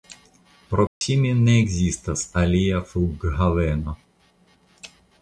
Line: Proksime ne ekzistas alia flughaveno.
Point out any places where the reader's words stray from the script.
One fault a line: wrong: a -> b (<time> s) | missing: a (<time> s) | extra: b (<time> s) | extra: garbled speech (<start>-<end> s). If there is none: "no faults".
no faults